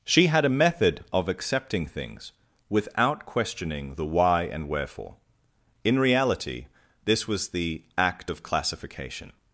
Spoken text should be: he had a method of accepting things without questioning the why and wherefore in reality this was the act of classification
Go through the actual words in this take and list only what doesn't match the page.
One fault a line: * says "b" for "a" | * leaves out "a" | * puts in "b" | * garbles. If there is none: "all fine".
* says "she" for "he"